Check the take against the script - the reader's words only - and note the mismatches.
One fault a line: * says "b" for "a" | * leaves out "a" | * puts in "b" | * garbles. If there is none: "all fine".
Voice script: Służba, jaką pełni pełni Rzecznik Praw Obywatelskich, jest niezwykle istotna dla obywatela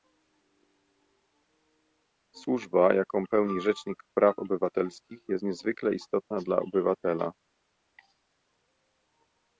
* leaves out "pełni"